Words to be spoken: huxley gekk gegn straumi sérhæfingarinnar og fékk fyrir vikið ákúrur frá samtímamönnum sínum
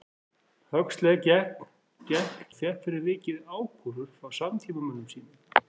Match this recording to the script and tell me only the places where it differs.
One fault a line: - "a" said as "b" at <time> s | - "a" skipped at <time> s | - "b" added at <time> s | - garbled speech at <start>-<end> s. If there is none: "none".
- "gegn straumi sérhæfingarinnar" skipped at 1.6 s